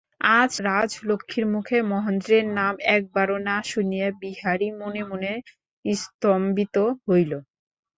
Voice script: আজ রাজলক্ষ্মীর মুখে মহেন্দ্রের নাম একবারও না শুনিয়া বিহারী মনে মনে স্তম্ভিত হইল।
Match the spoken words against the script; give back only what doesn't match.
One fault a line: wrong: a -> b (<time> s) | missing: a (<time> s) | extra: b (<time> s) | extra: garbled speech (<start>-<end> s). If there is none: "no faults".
no faults